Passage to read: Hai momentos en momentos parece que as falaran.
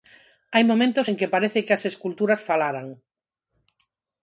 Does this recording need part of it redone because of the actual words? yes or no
yes